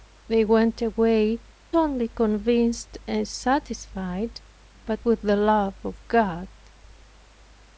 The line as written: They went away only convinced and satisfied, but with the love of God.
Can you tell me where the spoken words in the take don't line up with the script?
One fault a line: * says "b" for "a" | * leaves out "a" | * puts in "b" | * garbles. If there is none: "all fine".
all fine